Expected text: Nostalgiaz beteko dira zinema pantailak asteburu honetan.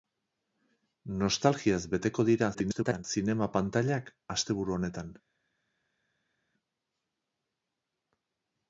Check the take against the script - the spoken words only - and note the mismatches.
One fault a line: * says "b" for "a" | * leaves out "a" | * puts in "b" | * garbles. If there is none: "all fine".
* garbles